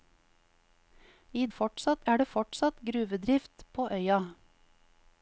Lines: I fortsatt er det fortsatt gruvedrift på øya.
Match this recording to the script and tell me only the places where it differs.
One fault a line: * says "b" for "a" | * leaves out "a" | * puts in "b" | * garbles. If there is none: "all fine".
all fine